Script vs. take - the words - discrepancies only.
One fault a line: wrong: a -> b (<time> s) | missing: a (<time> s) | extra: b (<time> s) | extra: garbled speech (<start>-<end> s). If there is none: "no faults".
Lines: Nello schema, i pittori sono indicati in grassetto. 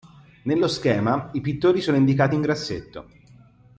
no faults